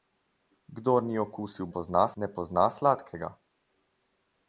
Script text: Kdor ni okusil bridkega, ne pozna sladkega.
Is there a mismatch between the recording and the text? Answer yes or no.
yes